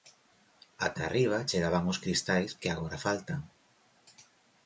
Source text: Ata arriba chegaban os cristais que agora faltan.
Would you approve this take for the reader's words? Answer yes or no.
yes